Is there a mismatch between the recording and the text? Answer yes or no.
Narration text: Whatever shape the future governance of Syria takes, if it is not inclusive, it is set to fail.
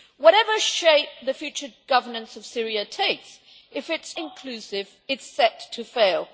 yes